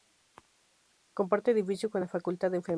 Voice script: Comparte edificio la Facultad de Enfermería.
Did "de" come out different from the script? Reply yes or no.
no